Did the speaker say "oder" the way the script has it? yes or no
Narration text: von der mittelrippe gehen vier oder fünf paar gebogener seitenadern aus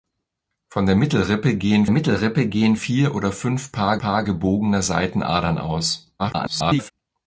yes